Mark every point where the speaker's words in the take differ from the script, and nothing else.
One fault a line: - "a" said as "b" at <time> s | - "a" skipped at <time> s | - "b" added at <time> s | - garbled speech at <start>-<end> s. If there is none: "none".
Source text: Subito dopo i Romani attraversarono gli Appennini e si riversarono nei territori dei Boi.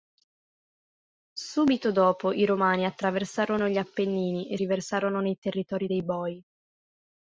- "si" skipped at 4.6 s